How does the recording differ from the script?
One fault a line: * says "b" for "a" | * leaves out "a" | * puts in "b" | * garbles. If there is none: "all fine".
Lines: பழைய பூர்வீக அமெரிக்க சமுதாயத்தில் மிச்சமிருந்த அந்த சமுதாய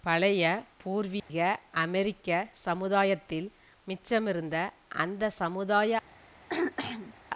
all fine